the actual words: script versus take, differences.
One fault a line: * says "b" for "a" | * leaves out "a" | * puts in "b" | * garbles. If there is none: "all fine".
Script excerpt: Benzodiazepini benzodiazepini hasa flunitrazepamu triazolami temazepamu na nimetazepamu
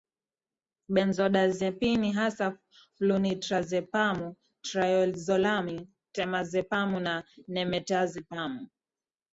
* leaves out "benzodiazepini"